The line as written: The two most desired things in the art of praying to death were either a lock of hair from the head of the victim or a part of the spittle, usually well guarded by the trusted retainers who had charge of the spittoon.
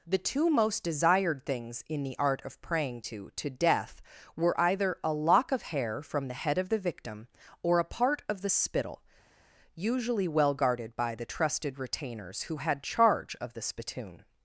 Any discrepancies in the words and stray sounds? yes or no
yes